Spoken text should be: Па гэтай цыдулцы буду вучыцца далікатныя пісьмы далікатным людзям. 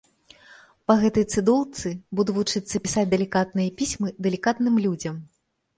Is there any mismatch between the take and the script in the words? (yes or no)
yes